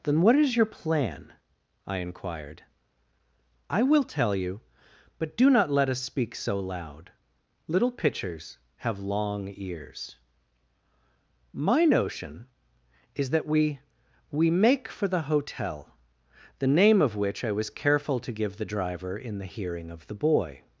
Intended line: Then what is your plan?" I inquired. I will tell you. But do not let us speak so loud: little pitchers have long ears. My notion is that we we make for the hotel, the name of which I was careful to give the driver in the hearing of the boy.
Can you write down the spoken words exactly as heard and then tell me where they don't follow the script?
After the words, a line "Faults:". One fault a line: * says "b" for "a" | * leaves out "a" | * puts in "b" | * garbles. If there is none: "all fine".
Then what is your plan?" I inquired. I will tell you. But do not let us speak so loud: little pitchers have long ears. My notion is that we we make for the hotel, the name of which I was careful to give the driver in the hearing of the boy.
Faults:
all fine